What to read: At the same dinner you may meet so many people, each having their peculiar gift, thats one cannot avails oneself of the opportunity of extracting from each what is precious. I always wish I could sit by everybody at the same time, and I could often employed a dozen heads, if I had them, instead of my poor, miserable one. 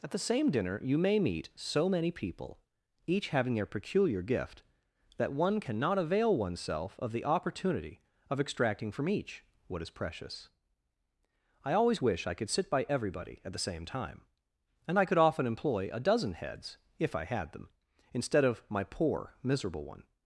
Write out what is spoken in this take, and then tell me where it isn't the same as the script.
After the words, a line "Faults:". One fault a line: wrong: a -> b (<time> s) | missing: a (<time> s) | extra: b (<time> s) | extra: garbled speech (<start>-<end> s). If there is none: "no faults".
At the same dinner you may meet so many people, each having their peculiar gift, that one cannot avail oneself of the opportunity of extracting from each what is precious. I always wish I could sit by everybody at the same time, and I could often employ a dozen heads, if I had them, instead of my poor, miserable one.
Faults:
wrong: thats -> that (5.2 s)
wrong: avails -> avail (6.0 s)
wrong: employed -> employ (15.5 s)